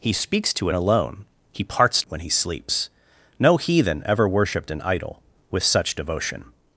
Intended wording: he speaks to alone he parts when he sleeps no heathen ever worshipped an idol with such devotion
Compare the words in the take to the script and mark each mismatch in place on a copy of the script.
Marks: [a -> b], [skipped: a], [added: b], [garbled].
he speaks to alone he parts when he sleeps no heathen ever worshipped an idol with such devotion